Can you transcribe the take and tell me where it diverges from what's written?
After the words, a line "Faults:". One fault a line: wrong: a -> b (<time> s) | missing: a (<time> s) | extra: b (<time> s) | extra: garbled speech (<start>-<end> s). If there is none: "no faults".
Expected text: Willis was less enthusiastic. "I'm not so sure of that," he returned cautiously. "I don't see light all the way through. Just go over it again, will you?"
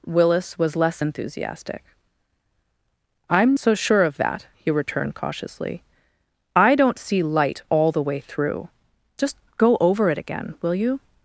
Willis was less enthusiastic. "I'm so sure of that," he returned cautiously. "I don't see light all the way through. Just go over it again, will you?"
Faults:
missing: not (3.5 s)